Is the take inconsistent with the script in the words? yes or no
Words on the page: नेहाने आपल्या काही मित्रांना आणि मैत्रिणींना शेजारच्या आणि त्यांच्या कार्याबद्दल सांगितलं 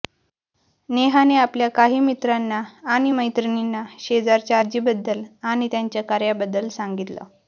yes